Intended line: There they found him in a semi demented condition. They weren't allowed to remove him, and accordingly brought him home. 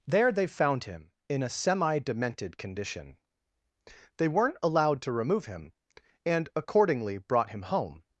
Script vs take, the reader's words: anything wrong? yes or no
no